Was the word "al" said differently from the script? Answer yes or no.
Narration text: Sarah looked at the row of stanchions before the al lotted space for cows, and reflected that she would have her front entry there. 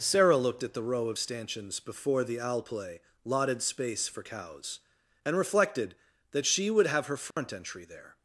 yes